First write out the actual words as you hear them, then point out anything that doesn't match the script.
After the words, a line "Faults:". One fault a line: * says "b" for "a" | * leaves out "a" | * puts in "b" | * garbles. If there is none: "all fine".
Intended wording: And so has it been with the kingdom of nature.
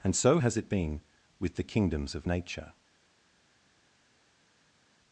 And so has it been with the kingdoms of nature.
Faults:
* says "kingdoms" for "kingdom"